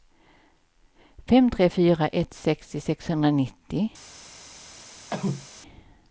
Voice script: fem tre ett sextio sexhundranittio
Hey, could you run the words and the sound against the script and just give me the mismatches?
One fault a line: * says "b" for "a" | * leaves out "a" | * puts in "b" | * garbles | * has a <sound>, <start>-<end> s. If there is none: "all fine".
* puts in "fyra"
* has a cough, 5.1-5.5 s